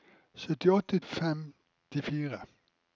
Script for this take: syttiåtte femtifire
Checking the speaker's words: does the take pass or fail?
pass